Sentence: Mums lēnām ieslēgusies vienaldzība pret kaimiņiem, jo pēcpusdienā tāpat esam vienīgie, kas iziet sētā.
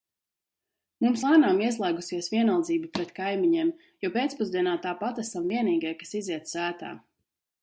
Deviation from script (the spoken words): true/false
false